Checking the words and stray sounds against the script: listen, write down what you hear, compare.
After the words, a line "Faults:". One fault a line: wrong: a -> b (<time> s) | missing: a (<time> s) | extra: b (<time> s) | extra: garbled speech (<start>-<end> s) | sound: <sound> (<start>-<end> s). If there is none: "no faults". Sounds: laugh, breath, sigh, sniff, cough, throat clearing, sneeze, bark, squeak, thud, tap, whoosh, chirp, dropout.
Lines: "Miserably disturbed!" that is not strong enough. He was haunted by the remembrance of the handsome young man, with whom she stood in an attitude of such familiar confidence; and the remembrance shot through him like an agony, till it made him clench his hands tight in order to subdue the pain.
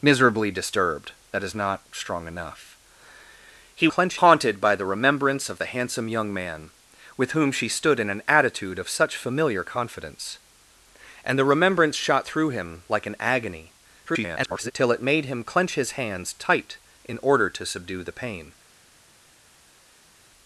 "Miserably disturbed!" that is not strong enough. He clench haunted by the remembrance of the handsome young man, with whom she stood in an attitude of such familiar confidence; and the remembrance shot through him like an agony, [garbled] till it made him clench his hands tight in order to subdue the pain.
Faults:
wrong: was -> clench (3.9 s)
extra: garbled speech (14.1-14.7 s)